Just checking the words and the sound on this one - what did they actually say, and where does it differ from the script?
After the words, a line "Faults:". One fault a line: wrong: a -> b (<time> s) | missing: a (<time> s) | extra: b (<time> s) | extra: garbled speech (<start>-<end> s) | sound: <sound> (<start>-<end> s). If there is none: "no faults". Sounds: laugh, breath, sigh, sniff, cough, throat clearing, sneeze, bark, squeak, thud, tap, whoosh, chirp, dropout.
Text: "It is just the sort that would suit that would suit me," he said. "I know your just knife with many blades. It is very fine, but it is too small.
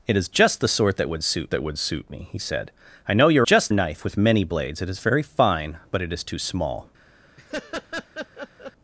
"It is just the sort that would suit that would suit me," he said. "I know your just knife with many blades. It is very fine, but it is too small.
Faults:
sound: laugh (7.4-8.7 s)